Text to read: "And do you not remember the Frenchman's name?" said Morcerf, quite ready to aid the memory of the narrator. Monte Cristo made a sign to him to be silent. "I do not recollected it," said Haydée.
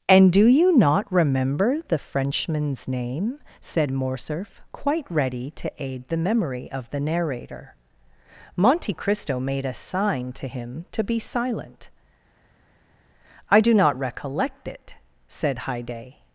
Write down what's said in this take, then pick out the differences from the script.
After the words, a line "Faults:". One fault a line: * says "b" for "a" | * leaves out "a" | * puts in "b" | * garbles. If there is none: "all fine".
"And do you not remember the Frenchman's name?" said Morcerf, quite ready to aid the memory of the narrator. Monte Cristo made a sign to him to be silent. "I do not recollect it," said Haydée.
Faults:
* says "recollect" for "recollected"